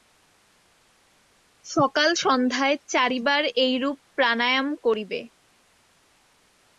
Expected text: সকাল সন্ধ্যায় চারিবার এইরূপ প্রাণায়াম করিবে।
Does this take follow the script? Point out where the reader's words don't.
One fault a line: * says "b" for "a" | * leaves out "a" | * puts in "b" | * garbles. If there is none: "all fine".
all fine